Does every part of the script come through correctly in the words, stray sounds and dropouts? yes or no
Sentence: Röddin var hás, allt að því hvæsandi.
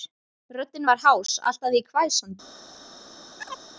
no